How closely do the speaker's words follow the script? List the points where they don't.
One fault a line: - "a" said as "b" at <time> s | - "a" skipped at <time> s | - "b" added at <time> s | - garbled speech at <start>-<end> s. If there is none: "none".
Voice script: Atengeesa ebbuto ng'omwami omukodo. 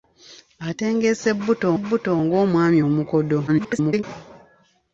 - "ebbuto" added at 1.8 s
- garbled speech at 3.5-4.0 s